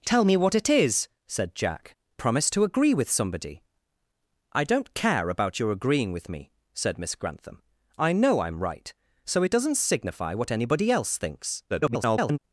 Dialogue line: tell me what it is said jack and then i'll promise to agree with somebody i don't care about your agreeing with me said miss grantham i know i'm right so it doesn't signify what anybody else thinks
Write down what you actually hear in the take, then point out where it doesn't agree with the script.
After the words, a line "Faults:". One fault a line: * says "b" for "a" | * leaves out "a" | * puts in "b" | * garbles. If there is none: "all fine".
tell me what it is said jack promise to agree with somebody i don't care about your agreeing with me said miss grantham i know i'm right so it doesn't signify what anybody else thinks [garbled]
Faults:
* leaves out "and then i'll"
* garbles